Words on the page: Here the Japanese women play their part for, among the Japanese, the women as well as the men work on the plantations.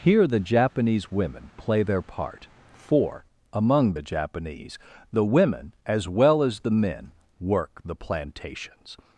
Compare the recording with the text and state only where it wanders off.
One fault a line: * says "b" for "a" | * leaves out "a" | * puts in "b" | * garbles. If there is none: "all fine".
* leaves out "on"